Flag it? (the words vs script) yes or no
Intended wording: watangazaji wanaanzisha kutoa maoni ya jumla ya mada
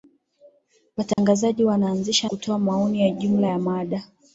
no